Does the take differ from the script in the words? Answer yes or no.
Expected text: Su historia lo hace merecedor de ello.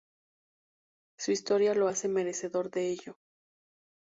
no